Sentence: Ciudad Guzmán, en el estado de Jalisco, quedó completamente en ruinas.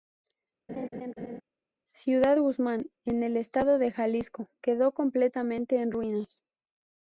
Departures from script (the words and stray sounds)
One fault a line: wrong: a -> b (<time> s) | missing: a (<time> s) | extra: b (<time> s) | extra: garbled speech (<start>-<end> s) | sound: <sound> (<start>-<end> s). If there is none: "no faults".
sound: laugh (0.7-1.4 s)